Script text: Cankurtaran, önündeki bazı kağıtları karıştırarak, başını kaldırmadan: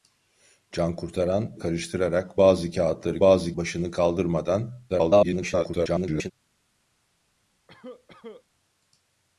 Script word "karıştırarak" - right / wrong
wrong